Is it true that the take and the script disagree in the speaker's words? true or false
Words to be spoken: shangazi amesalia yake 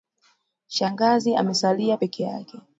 true